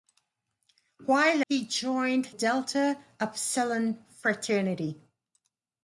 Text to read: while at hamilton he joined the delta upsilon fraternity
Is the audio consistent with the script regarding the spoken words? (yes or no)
no